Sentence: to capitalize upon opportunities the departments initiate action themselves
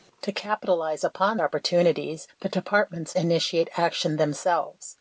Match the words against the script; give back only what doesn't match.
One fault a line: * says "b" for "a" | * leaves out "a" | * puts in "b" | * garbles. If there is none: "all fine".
all fine